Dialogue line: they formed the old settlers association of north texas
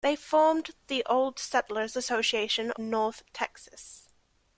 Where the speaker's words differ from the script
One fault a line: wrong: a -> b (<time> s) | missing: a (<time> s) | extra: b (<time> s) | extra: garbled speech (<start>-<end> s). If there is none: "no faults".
missing: of (2.7 s)